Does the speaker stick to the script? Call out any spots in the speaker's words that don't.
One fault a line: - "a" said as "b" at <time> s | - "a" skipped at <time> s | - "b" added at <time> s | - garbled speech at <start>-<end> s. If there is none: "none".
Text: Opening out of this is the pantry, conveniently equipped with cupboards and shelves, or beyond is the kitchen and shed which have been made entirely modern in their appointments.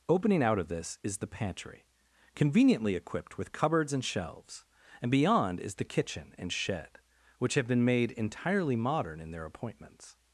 - "or" said as "and" at 5.0 s